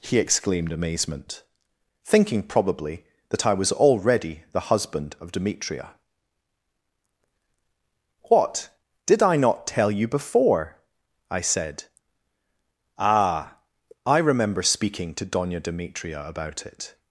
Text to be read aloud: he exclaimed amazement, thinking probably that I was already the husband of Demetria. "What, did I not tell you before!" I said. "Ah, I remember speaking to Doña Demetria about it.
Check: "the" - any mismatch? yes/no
no